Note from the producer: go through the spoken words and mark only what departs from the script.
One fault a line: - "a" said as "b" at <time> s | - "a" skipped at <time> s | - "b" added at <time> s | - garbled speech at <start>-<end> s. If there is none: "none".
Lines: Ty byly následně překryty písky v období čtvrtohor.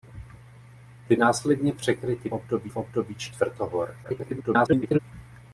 - "byly" skipped at 1.1 s
- "písky" said as "období" at 2.3 s
- garbled speech at 4.0-5.0 s